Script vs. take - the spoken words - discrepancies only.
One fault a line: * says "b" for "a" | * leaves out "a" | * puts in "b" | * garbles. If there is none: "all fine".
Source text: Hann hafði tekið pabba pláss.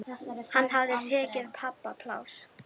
all fine